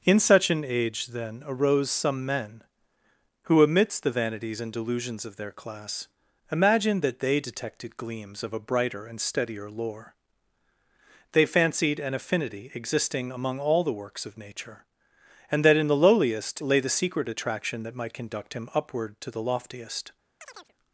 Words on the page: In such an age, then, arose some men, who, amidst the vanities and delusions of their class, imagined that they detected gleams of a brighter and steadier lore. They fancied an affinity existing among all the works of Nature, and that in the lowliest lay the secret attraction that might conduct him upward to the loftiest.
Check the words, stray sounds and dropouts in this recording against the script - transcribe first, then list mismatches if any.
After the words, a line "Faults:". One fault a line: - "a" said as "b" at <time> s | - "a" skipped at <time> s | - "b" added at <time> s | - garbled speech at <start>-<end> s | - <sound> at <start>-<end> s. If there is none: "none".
In such an age, then, arose some men, who, amidst the vanities and delusions of their class, imagined that they detected gleams of a brighter and steadier lore. They fancied an affinity existing among all the works of Nature, and that in the lowliest lay the secret attraction that might conduct him upward to the loftiest.
Faults:
- chirp at 20.4-20.7 s